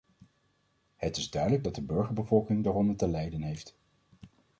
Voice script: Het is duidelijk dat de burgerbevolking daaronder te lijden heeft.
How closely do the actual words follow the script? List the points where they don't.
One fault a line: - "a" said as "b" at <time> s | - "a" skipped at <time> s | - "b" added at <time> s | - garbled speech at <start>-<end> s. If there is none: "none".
none